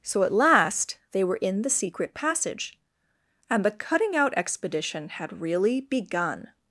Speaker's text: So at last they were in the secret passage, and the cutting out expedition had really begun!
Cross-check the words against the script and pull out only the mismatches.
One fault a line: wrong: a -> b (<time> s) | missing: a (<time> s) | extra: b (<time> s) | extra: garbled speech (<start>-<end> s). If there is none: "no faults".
no faults